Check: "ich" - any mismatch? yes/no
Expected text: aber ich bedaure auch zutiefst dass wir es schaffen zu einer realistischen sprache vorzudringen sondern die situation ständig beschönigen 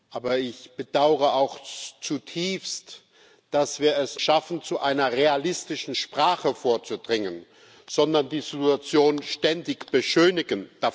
no